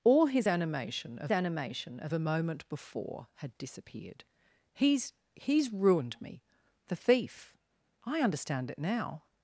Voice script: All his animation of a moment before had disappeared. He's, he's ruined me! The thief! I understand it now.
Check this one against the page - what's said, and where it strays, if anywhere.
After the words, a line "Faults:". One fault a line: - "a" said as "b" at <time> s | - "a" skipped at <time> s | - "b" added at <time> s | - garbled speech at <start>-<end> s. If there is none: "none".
All his animation of animation of a moment before had disappeared. He's, he's ruined me! The thief! I understand it now.
Faults:
- "animation of" added at 1.3 s